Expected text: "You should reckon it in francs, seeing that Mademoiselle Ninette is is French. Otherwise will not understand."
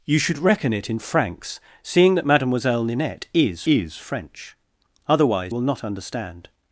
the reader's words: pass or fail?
pass